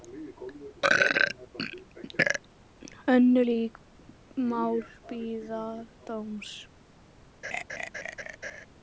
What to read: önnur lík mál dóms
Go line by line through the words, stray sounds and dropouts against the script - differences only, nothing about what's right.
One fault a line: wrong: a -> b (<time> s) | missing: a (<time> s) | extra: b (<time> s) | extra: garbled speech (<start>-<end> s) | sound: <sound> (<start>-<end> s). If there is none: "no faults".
extra: bíða (5.1 s)
sound: laugh (7.4-8.7 s)